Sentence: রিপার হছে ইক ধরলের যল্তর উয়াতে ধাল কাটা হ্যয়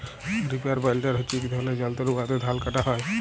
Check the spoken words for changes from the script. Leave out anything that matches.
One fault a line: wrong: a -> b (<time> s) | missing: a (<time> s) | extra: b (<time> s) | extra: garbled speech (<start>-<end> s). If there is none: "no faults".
extra: বাইলডার (0.8 s)